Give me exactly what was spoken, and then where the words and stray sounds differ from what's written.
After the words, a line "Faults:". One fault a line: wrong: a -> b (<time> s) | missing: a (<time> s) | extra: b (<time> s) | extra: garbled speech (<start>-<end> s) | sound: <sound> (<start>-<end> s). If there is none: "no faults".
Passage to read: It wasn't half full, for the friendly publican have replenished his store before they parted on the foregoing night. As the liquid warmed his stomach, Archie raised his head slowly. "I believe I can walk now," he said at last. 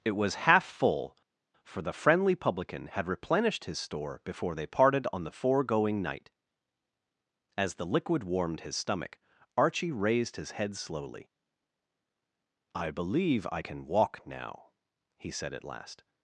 It was half full, for the friendly publican had replenished his store before they parted on the foregoing night. As the liquid warmed his stomach, Archie raised his head slowly. "I believe I can walk now," he said at last.
Faults:
wrong: wasn't -> was (0.1 s)
wrong: have -> had (2.9 s)